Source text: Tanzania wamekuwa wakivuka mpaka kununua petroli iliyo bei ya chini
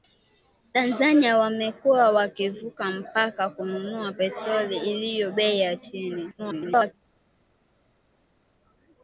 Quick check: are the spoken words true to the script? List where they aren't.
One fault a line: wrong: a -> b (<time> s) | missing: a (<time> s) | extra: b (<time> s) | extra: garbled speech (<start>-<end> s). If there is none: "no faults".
extra: garbled speech (6.4-6.9 s)